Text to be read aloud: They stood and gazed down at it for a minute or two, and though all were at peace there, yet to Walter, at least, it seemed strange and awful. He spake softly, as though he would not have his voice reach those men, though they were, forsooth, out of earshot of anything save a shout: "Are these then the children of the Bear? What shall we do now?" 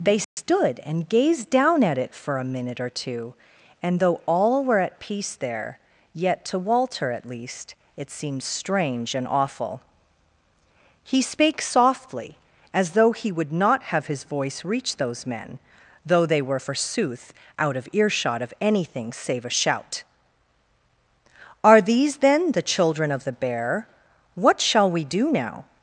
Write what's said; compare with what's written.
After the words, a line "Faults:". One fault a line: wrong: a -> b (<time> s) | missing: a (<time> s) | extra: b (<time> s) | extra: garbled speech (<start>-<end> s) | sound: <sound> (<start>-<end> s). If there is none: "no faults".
They stood and gazed down at it for a minute or two, and though all were at peace there, yet to Walter, at least, it seemed strange and awful. He spake softly, as though he would not have his voice reach those men, though they were, forsooth, out of earshot of anything save a shout: "Are these then the children of the Bear? What shall we do now?"
Faults:
sound: dropout (0.2-0.4 s)